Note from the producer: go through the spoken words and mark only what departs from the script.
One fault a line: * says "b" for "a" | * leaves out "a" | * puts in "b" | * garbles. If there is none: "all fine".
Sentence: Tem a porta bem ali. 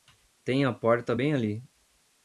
all fine